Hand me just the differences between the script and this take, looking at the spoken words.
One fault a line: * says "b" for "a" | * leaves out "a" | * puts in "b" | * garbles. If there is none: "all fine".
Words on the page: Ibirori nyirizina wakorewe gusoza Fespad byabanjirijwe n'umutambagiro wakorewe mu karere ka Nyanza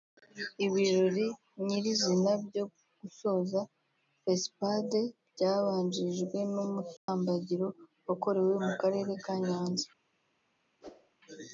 * says "byo" for "wakorewe"